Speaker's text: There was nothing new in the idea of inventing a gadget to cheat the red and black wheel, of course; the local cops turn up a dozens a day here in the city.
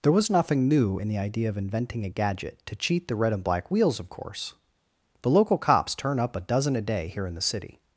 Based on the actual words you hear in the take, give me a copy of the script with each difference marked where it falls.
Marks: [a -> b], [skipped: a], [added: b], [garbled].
There was nothing new in the idea of inventing a gadget to cheat the red and black [wheel, -> wheels] of course; the local cops turn up a [dozens -> dozen] a day here in the city.